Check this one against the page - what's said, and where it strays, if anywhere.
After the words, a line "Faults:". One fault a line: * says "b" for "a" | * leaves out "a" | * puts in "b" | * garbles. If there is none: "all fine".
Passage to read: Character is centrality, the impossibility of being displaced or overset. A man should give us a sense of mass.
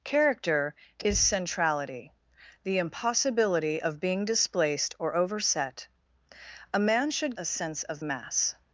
Character is centrality, the impossibility of being displaced or overset. A man should a sense of mass.
Faults:
* leaves out "give us"